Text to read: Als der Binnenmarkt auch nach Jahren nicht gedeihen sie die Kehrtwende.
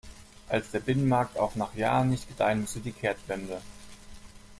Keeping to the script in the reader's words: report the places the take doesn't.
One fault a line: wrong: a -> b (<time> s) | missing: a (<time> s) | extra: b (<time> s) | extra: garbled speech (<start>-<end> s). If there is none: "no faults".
no faults